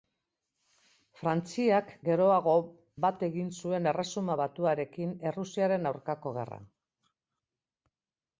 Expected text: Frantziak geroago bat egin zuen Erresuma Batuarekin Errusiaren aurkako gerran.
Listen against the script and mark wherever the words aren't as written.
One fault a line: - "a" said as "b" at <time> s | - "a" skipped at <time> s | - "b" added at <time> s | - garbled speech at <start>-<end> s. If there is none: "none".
none